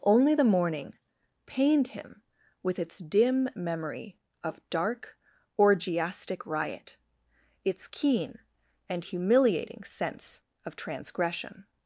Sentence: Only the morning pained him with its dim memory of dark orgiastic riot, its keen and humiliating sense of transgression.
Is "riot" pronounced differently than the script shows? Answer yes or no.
no